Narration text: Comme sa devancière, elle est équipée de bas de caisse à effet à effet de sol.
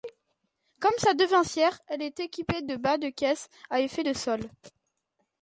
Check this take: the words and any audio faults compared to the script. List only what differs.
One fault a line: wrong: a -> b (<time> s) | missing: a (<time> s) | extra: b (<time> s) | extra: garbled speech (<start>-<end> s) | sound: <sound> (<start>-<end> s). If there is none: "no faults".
missing: à effet (4.0 s)